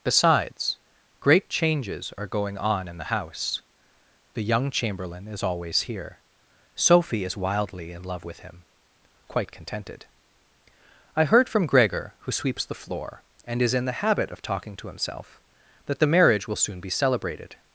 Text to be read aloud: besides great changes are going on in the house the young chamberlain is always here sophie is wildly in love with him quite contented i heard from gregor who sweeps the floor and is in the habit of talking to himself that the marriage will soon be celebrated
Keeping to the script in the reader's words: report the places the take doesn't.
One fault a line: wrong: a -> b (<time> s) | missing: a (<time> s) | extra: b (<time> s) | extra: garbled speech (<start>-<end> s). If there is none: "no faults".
no faults